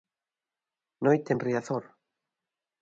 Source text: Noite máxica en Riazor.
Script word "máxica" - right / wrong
wrong